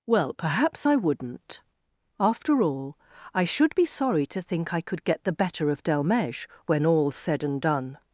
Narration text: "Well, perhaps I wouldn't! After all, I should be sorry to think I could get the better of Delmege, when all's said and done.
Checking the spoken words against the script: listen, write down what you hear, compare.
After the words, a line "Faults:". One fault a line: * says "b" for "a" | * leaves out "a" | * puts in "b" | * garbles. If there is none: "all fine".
"Well, perhaps I wouldn't! After all, I should be sorry to think I could get the better of Delmege, when all's said and done.
Faults:
all fine